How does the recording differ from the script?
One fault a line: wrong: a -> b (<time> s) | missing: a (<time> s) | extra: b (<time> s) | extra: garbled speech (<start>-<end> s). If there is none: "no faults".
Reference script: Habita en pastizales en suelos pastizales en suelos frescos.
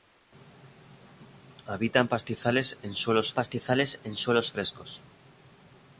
no faults